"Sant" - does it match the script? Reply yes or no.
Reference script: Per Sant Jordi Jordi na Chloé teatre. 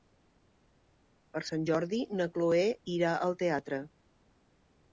yes